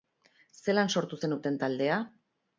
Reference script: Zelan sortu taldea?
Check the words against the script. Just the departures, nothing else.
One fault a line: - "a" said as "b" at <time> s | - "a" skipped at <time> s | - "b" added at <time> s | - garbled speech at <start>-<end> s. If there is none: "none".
- "zenuten" added at 1.2 s